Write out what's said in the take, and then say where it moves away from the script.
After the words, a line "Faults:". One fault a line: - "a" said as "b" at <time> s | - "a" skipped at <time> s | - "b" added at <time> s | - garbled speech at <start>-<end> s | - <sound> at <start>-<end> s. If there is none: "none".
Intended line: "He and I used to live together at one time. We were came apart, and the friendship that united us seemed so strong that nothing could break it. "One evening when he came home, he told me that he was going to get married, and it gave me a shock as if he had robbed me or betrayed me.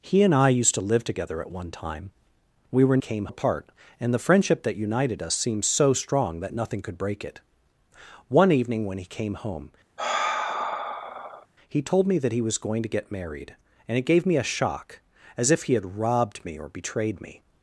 "He and I used to live together at one time. We were came apart, and the friendship that united us seemed so strong that nothing could break it. "One evening when he came home, he told me that he was going to get married, and it gave me a shock as if he had robbed me or betrayed me.
Faults:
- sigh at 10.0-11.5 s